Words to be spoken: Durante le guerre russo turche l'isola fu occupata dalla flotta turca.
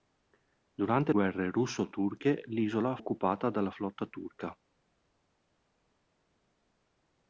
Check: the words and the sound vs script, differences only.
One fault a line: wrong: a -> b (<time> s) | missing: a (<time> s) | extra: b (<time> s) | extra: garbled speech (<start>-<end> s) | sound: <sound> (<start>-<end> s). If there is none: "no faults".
missing: le (1.1 s)
missing: fu (3.0 s)